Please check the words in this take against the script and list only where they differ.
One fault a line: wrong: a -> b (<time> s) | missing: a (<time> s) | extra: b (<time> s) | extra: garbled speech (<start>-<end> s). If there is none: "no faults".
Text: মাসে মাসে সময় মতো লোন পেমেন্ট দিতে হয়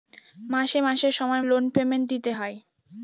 missing: মতো (1.4 s)